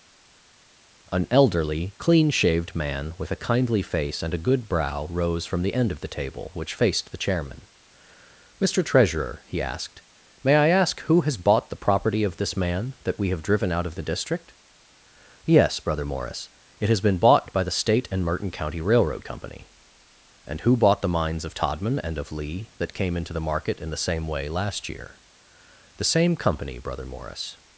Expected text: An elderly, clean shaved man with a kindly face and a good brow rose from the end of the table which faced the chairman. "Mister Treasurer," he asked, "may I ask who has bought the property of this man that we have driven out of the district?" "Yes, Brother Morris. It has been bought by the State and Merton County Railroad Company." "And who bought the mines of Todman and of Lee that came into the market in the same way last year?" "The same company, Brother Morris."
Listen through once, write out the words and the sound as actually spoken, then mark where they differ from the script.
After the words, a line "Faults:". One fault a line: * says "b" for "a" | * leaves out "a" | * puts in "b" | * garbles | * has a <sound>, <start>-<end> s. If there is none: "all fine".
An elderly, clean shaved man with a kindly face and a good brow rose from the end of the table which faced the chairman. "Mister Treasurer," he asked, "may I ask who has bought the property of this man that we have driven out of the district?" "Yes, Brother Morris. It has been bought by the State and Merton County Railroad Company." "And who bought the mines of Todman and of Lee that came into the market in the same way last year?" "The same company, Brother Morris."
Faults:
all fine